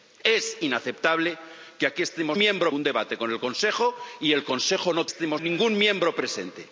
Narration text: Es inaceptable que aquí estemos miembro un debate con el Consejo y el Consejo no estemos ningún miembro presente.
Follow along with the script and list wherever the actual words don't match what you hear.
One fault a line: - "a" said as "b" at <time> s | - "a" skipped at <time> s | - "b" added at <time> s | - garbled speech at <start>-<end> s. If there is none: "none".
none